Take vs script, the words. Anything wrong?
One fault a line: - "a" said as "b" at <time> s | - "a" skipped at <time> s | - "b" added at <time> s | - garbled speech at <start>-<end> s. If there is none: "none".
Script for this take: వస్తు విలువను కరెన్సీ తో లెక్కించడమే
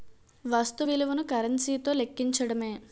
none